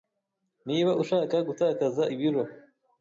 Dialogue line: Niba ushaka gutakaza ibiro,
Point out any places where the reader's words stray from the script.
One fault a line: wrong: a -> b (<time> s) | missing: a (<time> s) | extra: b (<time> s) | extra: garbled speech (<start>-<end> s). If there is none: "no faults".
no faults